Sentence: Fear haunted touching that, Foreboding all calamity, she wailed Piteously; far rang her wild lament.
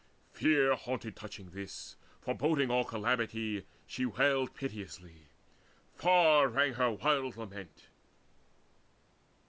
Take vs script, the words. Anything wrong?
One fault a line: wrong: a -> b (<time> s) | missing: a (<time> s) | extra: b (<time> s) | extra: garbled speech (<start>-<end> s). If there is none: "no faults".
wrong: that -> this (1.5 s)